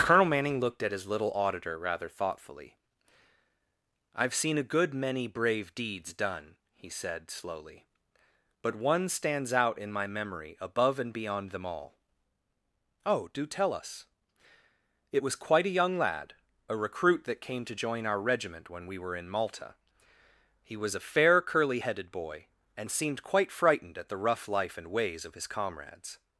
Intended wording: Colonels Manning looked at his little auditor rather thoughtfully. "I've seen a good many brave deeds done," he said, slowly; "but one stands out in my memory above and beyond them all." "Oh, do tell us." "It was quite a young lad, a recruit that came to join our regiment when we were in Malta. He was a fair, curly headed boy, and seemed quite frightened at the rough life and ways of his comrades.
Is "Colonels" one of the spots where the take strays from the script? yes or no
yes